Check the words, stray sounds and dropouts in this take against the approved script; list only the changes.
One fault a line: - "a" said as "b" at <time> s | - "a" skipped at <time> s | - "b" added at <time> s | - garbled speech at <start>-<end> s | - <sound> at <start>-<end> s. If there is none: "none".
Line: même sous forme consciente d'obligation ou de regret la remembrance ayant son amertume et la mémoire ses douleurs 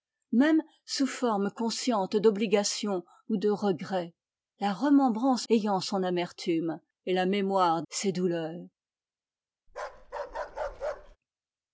- bark at 9.7-11.2 s